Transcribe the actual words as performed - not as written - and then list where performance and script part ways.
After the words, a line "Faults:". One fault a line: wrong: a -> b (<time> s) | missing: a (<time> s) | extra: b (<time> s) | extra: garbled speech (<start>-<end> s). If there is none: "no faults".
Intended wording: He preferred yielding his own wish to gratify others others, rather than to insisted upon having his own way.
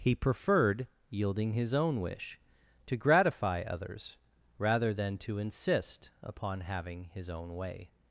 He preferred yielding his own wish to gratify others, rather than to insist upon having his own way.
Faults:
missing: others (4.2 s)
wrong: insisted -> insist (5.4 s)